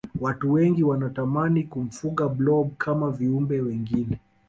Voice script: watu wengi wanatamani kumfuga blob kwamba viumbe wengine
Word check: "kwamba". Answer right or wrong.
wrong